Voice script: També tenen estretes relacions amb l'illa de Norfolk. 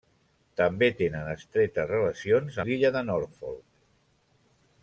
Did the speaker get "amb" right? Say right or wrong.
wrong